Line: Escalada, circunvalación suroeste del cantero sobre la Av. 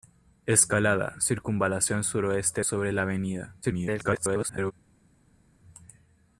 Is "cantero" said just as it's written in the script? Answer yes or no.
no